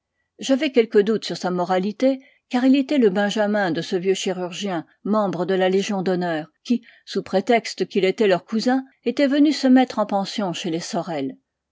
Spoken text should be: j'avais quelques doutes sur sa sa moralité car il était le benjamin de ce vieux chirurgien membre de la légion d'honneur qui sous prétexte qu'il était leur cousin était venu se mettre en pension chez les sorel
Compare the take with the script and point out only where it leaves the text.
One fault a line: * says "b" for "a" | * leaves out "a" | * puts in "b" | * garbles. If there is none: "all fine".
* leaves out "sa"